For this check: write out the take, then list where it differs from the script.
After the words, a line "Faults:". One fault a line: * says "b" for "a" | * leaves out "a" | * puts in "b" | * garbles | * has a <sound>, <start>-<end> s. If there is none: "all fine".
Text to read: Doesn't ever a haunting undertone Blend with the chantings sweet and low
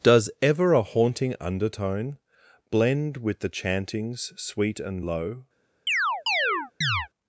Does ever a haunting undertone Blend with the chantings sweet and low
Faults:
* says "Does" for "Doesn't"
* has a chirp, 5.9-7.1 s